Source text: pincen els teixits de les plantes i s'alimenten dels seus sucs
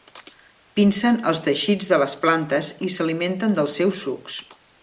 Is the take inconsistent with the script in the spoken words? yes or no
no